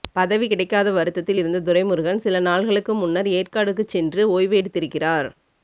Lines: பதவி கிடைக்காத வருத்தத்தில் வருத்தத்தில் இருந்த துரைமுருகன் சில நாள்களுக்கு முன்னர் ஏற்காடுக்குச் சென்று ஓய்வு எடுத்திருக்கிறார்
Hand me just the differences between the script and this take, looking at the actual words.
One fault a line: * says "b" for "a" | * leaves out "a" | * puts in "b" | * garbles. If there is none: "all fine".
* leaves out "வருத்தத்தில்"